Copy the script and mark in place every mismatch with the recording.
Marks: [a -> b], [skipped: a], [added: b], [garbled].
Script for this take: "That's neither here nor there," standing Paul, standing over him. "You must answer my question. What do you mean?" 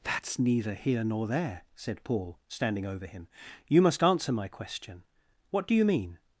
"That's neither here nor there," [standing -> said] Paul, standing over him. "You must answer my question. What do you mean?"